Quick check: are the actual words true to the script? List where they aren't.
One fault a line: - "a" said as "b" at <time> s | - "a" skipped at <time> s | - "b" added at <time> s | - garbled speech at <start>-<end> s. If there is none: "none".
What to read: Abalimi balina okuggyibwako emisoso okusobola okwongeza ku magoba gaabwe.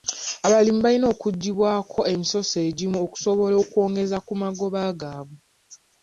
- "egimu" added at 2.7 s